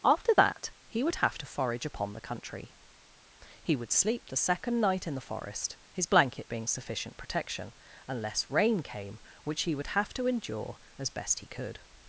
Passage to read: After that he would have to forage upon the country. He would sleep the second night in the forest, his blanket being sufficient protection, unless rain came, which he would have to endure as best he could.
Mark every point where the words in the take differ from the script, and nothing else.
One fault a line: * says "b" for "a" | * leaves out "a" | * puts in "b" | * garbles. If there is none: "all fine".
all fine